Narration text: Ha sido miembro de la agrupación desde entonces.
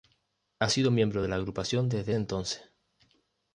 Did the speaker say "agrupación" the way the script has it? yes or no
yes